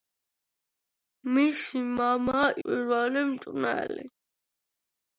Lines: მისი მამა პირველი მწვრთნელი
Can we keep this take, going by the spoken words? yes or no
yes